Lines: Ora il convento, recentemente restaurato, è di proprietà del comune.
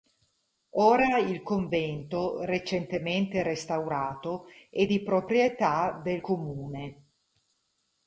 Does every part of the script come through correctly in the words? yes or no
yes